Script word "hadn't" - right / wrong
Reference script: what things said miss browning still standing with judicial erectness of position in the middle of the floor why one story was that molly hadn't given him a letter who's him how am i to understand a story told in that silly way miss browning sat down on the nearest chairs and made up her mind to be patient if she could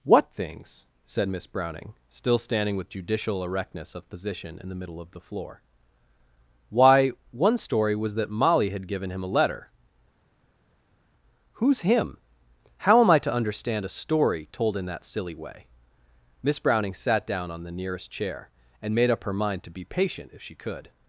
wrong